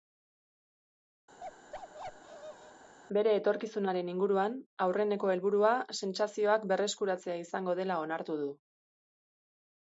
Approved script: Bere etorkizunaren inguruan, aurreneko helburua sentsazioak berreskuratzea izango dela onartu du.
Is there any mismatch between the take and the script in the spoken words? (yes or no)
no